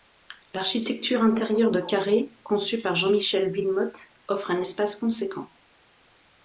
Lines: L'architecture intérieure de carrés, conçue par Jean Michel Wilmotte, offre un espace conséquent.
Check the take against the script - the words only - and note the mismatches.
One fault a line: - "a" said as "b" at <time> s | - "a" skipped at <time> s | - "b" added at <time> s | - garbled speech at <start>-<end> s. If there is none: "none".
none